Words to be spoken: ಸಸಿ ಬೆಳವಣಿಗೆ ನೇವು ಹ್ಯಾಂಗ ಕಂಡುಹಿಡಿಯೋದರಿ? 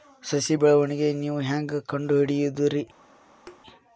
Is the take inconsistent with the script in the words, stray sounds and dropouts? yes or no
yes